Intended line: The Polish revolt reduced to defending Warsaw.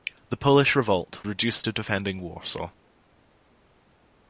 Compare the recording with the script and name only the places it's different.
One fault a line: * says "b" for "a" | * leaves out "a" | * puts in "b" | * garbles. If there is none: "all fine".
all fine